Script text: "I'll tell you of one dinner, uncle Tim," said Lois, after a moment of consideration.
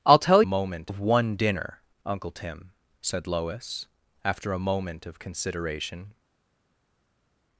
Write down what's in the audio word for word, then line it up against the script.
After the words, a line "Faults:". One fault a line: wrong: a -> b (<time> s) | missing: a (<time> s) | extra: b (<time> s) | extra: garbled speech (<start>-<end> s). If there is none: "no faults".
"I'll tell moment of one dinner, uncle Tim," said Lois, after a moment of consideration.
Faults:
wrong: you -> moment (0.4 s)